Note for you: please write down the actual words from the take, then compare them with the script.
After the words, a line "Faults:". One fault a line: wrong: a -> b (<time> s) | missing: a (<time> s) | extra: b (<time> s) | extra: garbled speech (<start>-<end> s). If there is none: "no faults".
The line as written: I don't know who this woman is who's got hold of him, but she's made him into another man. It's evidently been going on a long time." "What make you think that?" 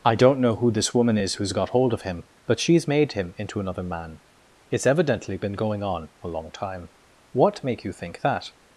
I don't know who this woman is who's got hold of him, but she's made him into another man. It's evidently been going on a long time." "What make you think that?"
Faults:
no faults